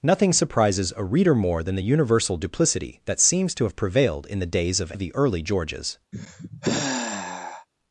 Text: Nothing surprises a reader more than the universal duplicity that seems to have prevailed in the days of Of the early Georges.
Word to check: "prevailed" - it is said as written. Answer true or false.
true